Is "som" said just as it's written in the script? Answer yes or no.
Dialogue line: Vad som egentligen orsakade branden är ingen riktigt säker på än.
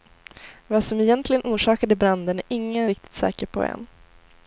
yes